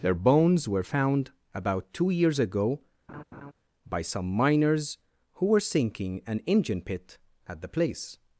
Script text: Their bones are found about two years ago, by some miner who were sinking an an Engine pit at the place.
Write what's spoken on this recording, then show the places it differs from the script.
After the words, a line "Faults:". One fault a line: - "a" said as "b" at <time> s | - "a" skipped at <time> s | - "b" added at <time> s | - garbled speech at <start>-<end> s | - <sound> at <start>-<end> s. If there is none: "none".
Their bones were found about two years ago, by some miners who were sinking an Engine pit at the place.
Faults:
- "are" said as "were" at 0.7 s
- laugh at 3.1-3.5 s
- "miner" said as "miners" at 4.3 s
- "an" skipped at 6.4 s